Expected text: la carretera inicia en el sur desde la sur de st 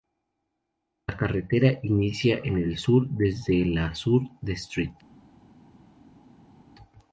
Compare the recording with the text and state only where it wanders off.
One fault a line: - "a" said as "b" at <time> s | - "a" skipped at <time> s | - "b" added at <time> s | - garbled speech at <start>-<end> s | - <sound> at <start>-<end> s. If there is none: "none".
none